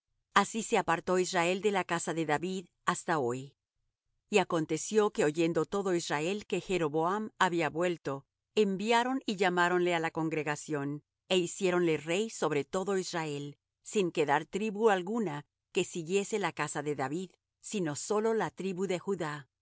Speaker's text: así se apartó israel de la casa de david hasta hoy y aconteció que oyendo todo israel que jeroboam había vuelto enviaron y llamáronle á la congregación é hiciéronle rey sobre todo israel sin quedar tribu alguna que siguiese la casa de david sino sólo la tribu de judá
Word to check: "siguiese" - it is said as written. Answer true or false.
true